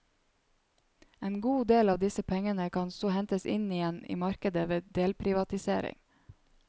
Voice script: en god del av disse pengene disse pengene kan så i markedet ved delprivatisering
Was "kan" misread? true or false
true